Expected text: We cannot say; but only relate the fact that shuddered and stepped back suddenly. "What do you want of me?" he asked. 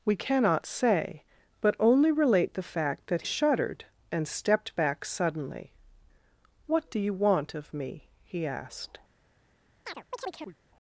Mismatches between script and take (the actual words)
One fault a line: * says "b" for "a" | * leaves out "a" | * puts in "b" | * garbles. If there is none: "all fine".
all fine